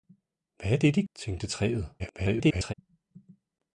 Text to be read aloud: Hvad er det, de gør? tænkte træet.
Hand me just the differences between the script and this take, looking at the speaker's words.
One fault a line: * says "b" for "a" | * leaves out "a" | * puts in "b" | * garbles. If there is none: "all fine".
* leaves out "gør"
* garbles